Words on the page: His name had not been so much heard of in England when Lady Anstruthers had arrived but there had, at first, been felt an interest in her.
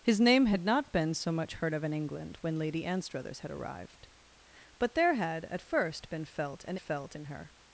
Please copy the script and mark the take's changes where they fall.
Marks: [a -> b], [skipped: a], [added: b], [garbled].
His name had not been so much heard of in England when Lady Anstruthers had arrived but there had, at first, been felt an [interest -> felt] in her.